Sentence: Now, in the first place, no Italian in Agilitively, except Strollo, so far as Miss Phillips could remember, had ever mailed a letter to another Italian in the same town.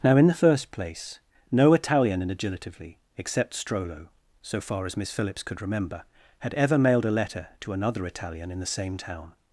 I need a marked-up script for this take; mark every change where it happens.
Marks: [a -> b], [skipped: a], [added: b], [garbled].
Now, in the first place, no Italian in Agilitively, except Strollo, so far as Miss Phillips could remember, had ever mailed a letter to another Italian in the same town.